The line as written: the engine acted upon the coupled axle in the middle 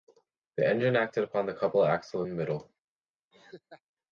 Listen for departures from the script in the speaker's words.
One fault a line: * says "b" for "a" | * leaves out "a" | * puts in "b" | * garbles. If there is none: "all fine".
all fine